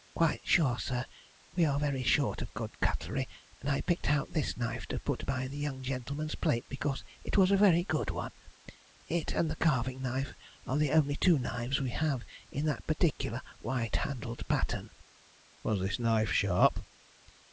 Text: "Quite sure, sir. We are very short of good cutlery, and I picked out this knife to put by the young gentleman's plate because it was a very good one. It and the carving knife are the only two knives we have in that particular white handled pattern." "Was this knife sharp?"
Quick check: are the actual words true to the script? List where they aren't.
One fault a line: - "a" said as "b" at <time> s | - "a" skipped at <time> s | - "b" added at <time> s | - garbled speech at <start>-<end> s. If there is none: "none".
none